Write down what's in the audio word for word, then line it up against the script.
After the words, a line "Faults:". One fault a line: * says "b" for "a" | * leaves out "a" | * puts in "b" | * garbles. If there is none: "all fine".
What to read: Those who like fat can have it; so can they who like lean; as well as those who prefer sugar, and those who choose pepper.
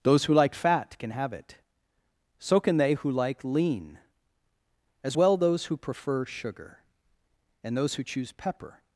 Those who like fat can have it; so can they who like lean; as well those who prefer sugar, and those who choose pepper.
Faults:
* leaves out "as"